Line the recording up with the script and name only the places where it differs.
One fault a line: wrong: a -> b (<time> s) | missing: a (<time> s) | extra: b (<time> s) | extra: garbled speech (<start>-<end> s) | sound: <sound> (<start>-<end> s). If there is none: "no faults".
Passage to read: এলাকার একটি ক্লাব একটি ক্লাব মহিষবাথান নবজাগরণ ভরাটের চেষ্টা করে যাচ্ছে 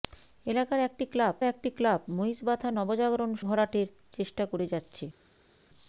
no faults